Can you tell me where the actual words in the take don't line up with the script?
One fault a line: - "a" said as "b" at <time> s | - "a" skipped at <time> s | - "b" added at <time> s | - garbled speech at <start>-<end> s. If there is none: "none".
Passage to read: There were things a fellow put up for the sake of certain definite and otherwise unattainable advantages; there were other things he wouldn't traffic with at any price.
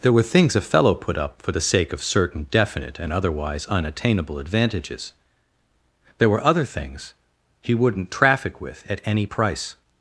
none